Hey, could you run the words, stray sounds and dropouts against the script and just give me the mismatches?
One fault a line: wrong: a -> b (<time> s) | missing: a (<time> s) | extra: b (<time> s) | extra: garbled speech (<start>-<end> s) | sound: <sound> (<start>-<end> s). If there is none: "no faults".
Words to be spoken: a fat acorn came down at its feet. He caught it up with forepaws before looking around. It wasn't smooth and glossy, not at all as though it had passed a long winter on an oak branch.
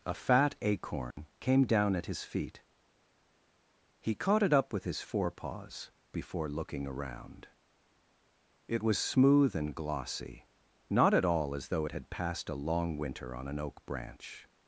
sound: dropout (1.1-1.2 s)
wrong: its -> his (2.1 s)
extra: his (4.8 s)
wrong: wasn't -> was (8.8 s)